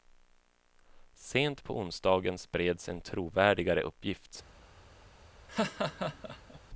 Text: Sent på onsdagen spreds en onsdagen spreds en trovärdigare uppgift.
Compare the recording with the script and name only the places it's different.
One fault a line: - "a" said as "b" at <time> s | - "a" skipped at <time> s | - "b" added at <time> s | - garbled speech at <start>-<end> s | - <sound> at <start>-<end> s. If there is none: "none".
- "onsdagen spreds en" skipped at 3.0 s
- laugh at 5.5-6.6 s